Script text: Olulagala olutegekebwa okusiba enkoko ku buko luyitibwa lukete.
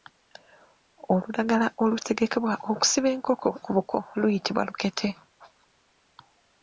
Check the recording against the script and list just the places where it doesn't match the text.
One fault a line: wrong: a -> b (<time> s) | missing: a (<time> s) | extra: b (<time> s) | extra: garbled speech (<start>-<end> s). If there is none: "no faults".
no faults